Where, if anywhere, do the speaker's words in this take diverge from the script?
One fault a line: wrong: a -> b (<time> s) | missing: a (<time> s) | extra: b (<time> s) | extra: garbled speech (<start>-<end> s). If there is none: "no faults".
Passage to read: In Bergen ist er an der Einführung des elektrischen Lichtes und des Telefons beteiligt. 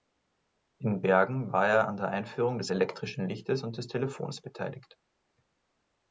wrong: ist -> war (1.5 s)